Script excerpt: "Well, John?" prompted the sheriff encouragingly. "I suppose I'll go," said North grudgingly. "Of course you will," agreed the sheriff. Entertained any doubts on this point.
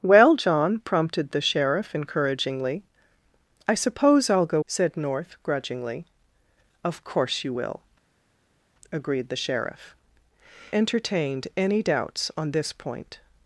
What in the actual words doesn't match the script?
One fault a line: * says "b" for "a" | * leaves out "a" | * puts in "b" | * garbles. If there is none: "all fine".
all fine